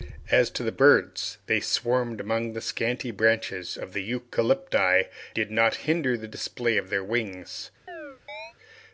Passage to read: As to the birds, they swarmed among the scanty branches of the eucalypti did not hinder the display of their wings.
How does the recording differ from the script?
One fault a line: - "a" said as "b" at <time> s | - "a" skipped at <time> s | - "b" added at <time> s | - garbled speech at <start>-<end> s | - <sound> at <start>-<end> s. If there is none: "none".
- chirp at 7.9-8.5 s